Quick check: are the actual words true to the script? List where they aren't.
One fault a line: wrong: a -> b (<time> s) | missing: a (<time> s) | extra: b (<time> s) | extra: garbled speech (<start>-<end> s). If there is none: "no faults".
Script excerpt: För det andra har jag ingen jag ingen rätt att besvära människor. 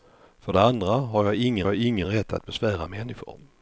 no faults